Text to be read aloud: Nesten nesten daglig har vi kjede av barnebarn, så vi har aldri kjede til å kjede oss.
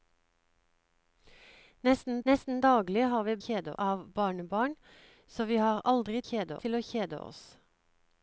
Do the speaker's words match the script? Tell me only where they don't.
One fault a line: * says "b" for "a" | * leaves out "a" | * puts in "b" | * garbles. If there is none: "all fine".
all fine